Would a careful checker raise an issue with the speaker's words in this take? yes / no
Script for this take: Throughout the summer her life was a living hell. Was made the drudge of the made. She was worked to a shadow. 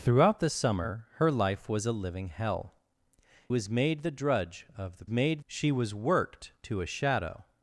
no